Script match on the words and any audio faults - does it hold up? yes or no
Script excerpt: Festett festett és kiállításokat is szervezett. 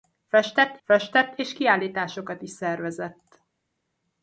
yes